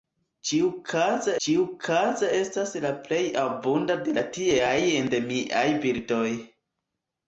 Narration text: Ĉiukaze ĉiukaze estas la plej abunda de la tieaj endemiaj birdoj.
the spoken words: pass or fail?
pass